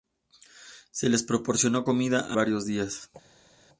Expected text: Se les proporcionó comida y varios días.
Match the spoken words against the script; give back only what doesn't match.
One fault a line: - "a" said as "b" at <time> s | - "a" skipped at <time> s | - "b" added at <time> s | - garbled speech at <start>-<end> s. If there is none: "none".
none